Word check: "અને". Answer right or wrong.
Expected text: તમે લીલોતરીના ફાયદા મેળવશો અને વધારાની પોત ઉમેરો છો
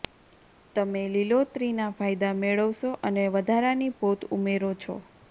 right